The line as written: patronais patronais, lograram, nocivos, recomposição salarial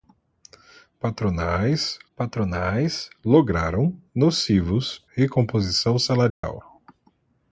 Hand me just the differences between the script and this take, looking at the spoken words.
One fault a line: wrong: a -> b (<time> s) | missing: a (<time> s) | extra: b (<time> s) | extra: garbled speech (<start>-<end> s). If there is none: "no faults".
no faults